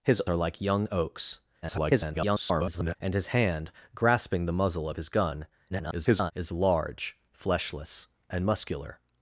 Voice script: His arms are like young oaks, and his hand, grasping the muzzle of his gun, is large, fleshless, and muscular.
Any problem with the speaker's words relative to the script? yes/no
yes